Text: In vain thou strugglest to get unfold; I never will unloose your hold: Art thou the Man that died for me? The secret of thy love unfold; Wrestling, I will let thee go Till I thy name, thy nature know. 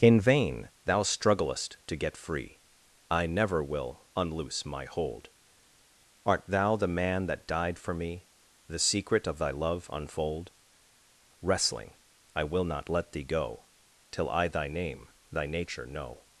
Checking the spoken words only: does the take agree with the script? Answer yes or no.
no